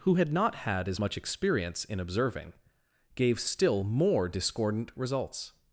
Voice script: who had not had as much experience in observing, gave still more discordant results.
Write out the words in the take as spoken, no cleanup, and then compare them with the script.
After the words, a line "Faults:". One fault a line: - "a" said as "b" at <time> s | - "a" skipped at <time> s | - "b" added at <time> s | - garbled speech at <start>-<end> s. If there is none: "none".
who had not had as much experience in observing, gave still more discordant results.
Faults:
none